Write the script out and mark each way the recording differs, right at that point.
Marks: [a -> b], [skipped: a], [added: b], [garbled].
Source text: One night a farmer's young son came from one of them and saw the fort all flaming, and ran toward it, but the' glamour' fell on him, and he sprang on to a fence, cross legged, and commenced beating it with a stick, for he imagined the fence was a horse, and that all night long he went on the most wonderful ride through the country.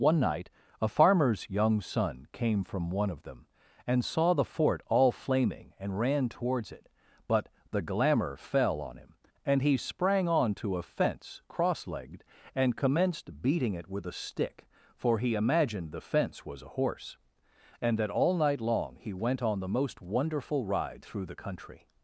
One night a farmer's young son came from one of them and saw the fort all flaming, and ran [toward -> towards] it, but the' glamour' fell on him, and he sprang on to a fence, cross legged, and commenced beating it with a stick, for he imagined the fence was a horse, and that all night long he went on the most wonderful ride through the country.